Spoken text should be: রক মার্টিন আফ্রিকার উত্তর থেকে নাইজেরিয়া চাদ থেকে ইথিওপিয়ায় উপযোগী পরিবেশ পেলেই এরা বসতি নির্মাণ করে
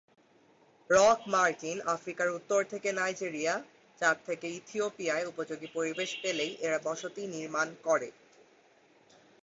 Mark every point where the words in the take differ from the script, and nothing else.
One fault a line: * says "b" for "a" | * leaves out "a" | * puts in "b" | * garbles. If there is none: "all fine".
all fine